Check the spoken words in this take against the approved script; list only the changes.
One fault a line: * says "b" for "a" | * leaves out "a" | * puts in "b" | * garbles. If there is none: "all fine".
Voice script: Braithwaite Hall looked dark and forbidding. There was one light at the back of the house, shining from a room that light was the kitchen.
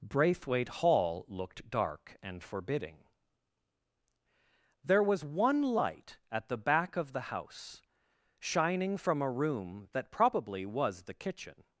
* says "probably" for "light"